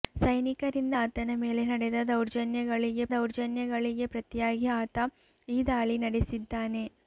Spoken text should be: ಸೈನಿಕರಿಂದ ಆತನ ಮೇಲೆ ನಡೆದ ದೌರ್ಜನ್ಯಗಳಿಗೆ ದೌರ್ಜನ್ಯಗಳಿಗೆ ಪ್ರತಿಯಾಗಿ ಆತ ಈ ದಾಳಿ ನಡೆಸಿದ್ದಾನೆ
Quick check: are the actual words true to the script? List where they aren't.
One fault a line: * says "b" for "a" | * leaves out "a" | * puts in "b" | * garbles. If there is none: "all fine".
all fine